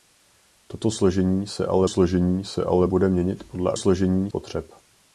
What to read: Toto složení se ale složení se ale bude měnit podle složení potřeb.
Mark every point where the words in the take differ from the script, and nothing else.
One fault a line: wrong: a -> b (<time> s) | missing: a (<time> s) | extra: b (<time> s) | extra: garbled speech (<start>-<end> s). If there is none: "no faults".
no faults